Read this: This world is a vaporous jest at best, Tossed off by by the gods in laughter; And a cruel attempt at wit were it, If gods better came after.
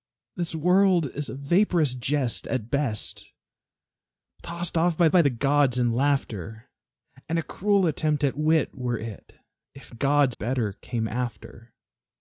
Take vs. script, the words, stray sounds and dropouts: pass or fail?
pass